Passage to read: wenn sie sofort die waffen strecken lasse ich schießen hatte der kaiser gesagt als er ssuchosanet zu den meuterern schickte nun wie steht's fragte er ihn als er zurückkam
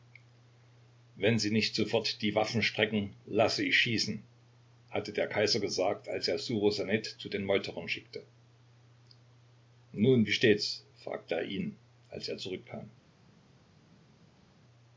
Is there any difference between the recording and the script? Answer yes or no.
yes